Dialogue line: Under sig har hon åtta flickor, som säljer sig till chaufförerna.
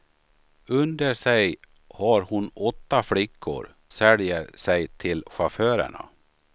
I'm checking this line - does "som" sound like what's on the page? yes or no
no